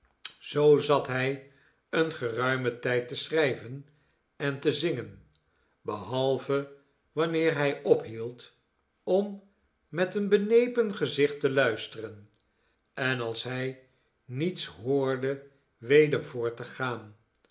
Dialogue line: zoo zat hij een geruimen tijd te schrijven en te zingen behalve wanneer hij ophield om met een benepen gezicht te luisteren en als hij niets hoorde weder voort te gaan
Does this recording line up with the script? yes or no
yes